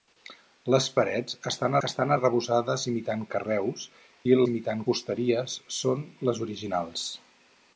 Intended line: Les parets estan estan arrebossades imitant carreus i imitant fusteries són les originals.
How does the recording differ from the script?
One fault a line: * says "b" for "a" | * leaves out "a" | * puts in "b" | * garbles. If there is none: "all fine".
all fine